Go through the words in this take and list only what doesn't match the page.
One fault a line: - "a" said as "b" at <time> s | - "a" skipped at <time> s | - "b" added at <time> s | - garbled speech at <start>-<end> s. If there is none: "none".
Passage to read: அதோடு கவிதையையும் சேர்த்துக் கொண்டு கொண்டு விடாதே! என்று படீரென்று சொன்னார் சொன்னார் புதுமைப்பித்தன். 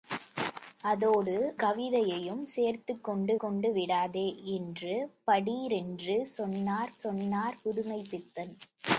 none